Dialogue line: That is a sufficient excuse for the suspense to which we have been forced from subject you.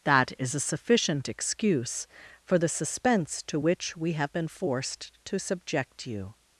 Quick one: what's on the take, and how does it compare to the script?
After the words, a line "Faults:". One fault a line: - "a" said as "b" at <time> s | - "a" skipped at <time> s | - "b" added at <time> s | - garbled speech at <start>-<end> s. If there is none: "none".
That is a sufficient excuse for the suspense to which we have been forced to subject you.
Faults:
- "from" said as "to" at 5.2 s